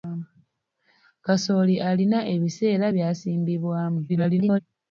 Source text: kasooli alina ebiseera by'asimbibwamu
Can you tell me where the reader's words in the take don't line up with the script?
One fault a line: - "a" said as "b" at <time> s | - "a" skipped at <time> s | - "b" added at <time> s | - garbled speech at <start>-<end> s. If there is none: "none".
- garbled speech at 4.1-4.6 s